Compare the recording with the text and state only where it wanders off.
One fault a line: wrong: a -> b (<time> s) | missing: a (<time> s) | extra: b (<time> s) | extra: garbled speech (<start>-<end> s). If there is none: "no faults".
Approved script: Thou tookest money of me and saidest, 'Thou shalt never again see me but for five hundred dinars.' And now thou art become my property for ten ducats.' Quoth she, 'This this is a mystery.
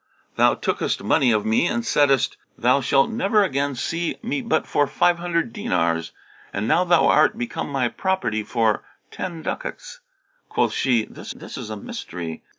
no faults